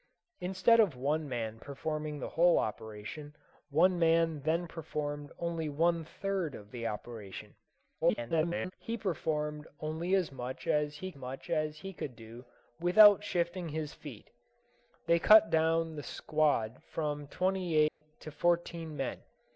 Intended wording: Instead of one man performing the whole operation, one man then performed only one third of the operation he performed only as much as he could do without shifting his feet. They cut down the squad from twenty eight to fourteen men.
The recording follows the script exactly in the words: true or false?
false